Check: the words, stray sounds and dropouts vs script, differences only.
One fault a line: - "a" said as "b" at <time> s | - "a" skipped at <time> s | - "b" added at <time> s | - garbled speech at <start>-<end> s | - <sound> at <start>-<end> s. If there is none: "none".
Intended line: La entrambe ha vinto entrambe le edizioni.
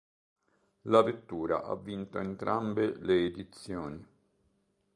- "entrambe" said as "vettura" at 1.0 s